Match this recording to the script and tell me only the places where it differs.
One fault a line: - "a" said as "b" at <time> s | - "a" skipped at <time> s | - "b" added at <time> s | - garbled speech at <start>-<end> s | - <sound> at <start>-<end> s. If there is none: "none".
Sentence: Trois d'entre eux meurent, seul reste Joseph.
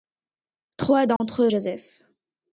- dropout at 1.2-1.2 s
- "meurent seul reste" skipped at 1.5 s